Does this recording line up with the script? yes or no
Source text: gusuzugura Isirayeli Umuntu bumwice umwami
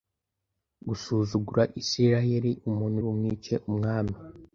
yes